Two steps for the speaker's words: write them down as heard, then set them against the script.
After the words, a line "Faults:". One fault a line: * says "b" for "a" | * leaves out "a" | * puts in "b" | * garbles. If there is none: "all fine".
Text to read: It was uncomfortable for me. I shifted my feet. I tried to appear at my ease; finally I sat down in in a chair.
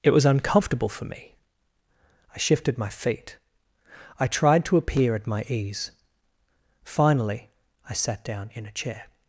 It was uncomfortable for me. I shifted my feet. I tried to appear at my ease; finally I sat down in a chair.
Faults:
* leaves out "in"